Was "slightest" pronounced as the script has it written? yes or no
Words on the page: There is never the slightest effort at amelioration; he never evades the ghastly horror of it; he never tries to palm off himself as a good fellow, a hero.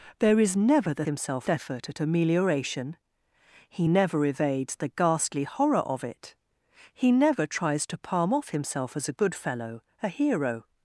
no